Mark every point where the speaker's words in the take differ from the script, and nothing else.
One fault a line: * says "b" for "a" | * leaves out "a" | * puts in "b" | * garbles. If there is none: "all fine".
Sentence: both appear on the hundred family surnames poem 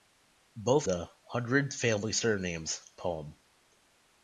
* leaves out "appear on"